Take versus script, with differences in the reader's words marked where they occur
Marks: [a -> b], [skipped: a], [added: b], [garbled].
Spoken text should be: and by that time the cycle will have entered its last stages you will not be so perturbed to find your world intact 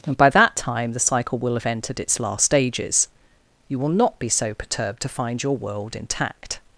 and by that time the cycle will have entered its last stages you will not be so perturbed to find your world intact